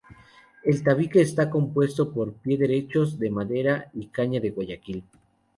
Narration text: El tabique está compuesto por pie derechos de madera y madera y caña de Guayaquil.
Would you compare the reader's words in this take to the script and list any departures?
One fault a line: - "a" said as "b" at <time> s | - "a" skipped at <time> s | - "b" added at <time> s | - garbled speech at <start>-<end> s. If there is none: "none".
- "madera y" skipped at 4.1 s